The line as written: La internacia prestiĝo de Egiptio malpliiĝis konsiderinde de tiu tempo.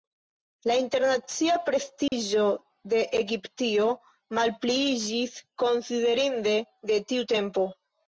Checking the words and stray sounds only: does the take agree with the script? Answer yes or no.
no